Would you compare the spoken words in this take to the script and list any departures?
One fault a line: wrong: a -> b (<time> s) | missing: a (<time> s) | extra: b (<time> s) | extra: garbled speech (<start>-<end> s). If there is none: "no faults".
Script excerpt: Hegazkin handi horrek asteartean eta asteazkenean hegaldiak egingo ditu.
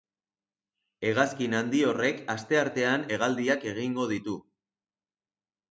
missing: eta asteazkenean (3.0 s)